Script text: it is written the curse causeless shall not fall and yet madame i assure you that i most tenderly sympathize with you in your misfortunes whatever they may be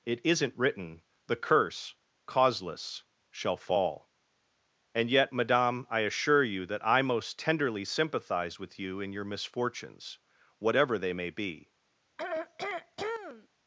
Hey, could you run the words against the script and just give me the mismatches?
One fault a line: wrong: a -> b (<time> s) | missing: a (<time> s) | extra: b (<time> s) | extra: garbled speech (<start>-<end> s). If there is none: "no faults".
wrong: is -> isn't (0.2 s)
missing: not (3.6 s)